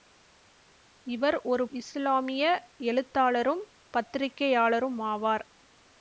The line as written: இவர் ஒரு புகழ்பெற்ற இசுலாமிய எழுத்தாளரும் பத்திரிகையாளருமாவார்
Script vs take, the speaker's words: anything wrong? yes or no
yes